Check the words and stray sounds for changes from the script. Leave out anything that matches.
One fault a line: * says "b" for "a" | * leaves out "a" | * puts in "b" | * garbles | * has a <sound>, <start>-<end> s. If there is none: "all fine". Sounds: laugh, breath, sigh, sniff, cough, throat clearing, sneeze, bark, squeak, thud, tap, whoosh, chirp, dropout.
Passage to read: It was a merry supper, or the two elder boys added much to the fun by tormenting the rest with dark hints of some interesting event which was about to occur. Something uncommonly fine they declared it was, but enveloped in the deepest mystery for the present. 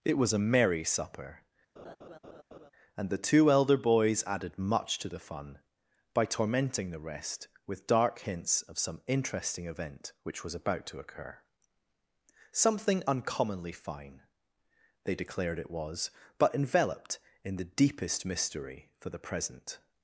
* has a laugh, 1.8-2.7 s
* says "and" for "or"